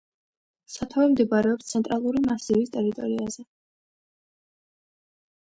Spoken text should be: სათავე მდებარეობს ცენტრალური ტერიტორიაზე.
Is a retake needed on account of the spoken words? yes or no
yes